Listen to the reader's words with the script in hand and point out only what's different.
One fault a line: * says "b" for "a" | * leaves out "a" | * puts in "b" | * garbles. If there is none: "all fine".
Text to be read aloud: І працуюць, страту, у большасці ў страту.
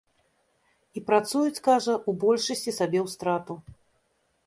* says "кажа" for "страту"
* puts in "сабе"